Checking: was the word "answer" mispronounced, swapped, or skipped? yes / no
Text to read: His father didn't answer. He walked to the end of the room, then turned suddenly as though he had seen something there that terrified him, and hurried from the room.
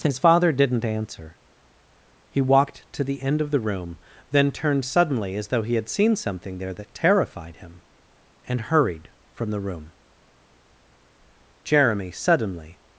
no